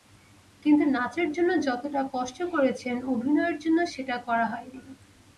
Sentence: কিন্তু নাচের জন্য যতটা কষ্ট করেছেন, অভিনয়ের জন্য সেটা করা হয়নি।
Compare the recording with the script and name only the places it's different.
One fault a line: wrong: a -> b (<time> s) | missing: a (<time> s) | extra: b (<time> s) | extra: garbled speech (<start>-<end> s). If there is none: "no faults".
no faults